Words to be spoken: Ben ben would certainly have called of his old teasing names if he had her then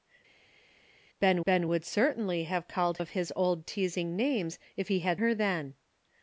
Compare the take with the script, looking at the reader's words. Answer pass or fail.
pass